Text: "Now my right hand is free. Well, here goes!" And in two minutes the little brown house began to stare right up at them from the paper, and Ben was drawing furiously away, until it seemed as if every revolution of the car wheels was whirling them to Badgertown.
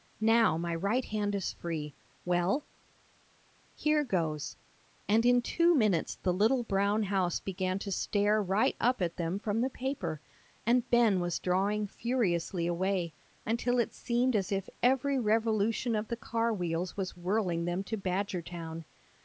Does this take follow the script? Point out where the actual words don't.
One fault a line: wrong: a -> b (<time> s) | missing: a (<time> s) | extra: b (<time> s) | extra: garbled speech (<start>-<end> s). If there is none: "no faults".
no faults